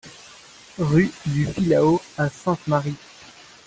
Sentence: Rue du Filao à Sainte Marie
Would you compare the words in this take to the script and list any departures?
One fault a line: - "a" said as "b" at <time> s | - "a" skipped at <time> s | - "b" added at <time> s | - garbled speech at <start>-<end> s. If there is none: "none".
none